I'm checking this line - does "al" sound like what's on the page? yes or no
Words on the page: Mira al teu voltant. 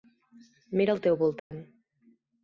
yes